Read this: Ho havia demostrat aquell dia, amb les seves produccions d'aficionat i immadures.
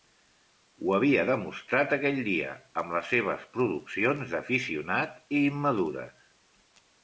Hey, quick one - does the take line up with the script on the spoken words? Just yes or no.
yes